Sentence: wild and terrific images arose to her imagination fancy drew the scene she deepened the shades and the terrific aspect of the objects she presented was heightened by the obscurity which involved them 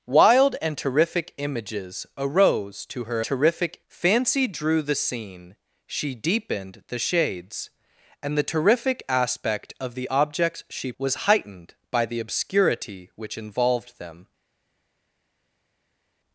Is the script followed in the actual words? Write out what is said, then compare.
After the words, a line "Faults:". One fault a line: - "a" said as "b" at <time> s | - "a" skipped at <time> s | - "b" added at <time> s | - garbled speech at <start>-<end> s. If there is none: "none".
wild and terrific images arose to her terrific fancy drew the scene she deepened the shades and the terrific aspect of the objects she was heightened by the obscurity which involved them
Faults:
- "imagination" said as "terrific" at 3.2 s
- "presented" skipped at 10.9 s